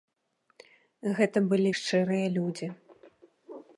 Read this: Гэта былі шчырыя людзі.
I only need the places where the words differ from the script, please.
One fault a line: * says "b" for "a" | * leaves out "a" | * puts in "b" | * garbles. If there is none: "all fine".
all fine